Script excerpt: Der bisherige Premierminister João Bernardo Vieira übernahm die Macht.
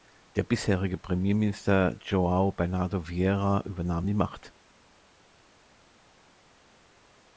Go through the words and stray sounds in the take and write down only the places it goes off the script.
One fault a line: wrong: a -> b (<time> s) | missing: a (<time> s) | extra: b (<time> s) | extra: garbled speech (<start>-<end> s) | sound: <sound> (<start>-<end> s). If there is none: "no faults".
no faults